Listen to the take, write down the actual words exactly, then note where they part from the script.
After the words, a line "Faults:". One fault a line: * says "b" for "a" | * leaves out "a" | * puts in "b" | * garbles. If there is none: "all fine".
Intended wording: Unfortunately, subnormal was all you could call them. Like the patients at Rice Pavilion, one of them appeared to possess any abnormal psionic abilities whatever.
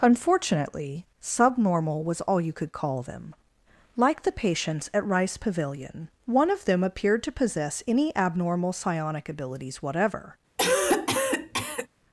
Unfortunately, subnormal was all you could call them. Like the patients at Rice Pavilion, one of them appeared to possess any abnormal psionic abilities whatever.
Faults:
all fine